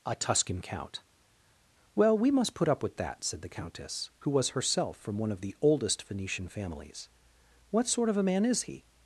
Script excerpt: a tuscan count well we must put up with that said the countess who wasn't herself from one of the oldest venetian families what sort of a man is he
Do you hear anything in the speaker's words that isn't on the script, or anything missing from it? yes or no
yes